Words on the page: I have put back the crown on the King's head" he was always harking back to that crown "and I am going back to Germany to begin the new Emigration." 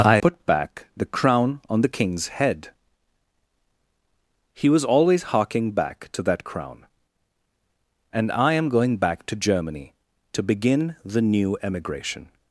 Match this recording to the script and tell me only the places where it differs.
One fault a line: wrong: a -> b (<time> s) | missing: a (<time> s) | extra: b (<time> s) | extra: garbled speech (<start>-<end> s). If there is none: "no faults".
missing: have (0.2 s)